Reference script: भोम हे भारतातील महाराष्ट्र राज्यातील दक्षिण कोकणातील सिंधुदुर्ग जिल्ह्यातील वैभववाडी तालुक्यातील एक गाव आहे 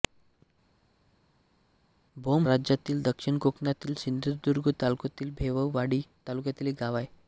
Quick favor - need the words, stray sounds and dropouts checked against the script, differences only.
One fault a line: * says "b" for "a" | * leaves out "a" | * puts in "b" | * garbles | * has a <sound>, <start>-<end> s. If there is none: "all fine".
* leaves out "हे भारतातील महाराष्ट्र"